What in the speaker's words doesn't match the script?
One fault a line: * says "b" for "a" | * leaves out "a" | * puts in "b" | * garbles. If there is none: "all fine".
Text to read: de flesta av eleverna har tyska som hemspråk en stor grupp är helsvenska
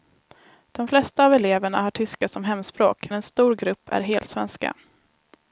all fine